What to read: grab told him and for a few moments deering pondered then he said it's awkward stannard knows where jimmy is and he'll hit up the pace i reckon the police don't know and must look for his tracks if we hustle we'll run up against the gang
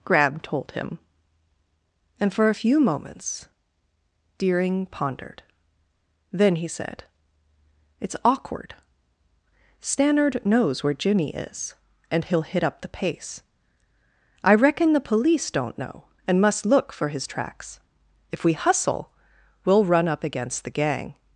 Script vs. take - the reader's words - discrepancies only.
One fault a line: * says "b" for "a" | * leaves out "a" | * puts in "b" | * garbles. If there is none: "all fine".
all fine